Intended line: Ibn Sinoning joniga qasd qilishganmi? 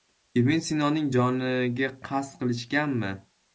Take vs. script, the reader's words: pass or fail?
pass